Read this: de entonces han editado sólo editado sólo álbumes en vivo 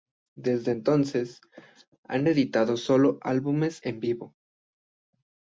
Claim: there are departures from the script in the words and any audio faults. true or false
true